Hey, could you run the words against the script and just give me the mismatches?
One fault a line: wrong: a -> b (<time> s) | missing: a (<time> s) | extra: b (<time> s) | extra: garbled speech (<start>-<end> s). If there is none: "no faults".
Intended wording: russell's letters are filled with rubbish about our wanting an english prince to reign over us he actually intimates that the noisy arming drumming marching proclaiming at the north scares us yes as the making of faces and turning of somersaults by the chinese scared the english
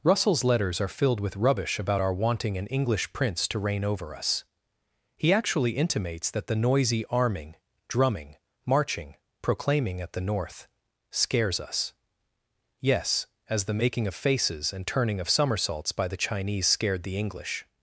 no faults